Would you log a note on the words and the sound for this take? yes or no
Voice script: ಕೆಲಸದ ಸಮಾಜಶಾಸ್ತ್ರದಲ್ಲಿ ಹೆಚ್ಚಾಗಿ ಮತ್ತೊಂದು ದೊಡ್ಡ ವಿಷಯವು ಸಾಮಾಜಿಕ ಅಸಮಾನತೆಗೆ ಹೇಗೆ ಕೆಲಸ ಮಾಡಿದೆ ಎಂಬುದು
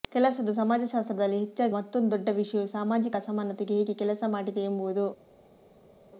no